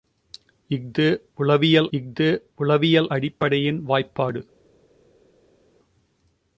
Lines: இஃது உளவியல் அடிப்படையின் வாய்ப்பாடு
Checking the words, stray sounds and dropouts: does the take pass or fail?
fail